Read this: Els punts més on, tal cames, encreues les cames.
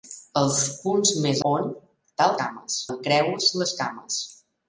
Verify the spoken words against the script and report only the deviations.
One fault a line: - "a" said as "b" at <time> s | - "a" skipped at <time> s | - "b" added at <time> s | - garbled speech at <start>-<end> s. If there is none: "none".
none